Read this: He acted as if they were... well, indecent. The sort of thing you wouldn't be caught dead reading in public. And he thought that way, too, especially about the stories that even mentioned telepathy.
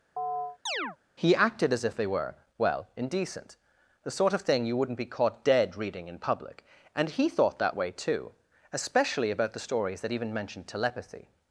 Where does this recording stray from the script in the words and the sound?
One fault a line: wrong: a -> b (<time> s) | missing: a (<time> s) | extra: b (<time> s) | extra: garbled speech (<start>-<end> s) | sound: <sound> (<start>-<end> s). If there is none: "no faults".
sound: chirp (0.2-1.0 s)